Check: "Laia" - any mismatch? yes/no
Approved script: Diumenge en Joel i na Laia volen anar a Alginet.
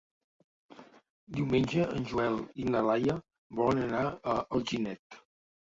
no